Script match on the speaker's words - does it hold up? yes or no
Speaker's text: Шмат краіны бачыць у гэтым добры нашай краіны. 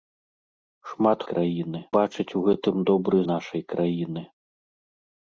yes